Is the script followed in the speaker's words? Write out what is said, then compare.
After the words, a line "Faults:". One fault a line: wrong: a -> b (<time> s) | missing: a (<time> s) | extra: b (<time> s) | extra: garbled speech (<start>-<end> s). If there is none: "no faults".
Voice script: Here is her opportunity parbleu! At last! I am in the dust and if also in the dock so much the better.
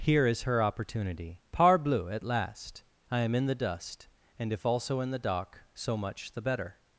Here is her opportunity parbleu! At last! I am in the dust and if also in the dock so much the better.
Faults:
no faults